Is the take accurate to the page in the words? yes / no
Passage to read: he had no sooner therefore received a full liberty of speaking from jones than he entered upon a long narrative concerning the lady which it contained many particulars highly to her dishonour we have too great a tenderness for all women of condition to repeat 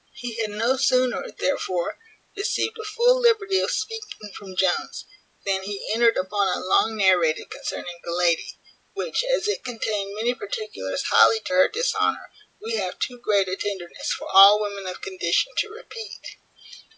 no